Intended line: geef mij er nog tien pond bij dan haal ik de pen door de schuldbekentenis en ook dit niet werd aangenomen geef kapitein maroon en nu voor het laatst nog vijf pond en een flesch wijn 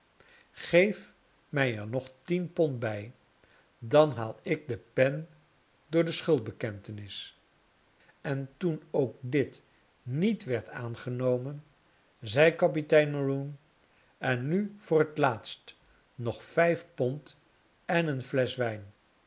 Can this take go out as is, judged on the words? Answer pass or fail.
fail